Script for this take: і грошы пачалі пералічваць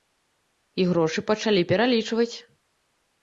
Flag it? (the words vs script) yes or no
no